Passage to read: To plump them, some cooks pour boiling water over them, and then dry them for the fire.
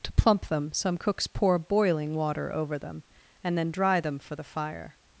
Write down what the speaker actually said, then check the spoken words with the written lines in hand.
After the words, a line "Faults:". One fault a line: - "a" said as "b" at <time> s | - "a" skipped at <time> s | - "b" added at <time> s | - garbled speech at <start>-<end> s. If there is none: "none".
To plump them, some cooks pour boiling water over them, and then dry them for the fire.
Faults:
none